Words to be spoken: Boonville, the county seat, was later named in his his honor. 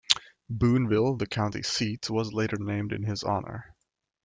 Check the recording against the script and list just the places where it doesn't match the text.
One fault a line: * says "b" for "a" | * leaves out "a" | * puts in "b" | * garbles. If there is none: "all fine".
* leaves out "his"